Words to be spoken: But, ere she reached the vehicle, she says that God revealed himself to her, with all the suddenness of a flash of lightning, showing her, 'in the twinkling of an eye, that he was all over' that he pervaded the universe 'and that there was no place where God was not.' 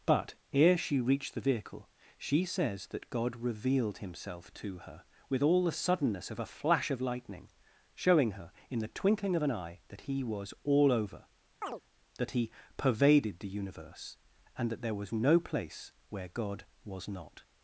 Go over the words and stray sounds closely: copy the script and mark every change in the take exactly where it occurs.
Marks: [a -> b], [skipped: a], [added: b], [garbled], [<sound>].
But, ere she reached the vehicle, she says that God revealed himself to her, with all the suddenness of a flash of lightning, showing her, 'in the twinkling of an eye, that he was all over' [chirp] that he pervaded the universe 'and that there was no place where God was not.'